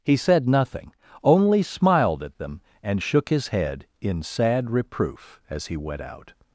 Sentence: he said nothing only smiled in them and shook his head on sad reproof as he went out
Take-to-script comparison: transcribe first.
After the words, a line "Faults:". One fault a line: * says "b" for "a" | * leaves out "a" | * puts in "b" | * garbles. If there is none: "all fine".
he said nothing only smiled at them and shook his head in sad reproof as he went out
Faults:
* says "at" for "in"
* says "in" for "on"